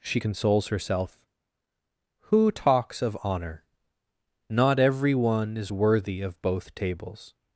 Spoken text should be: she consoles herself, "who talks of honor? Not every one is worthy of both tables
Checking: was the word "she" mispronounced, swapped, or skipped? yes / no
no